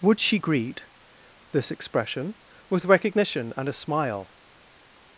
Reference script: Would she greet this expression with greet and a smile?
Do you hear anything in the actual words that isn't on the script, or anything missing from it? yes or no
yes